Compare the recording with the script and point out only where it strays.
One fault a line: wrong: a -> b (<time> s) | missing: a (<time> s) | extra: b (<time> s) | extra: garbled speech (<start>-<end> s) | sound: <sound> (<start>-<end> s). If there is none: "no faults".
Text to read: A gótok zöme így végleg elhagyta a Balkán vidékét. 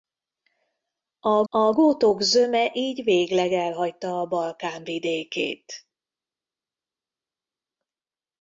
extra: a (1.5 s)